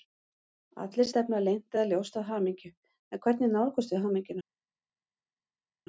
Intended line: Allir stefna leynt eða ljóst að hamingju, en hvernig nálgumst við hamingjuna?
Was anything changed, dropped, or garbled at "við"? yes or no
no